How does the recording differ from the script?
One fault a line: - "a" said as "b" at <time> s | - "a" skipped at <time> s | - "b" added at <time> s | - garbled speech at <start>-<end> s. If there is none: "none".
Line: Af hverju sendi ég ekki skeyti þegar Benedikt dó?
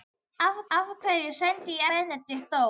- "af" added at 0.8 s
- "ekki skeyti þegar" skipped at 1.8 s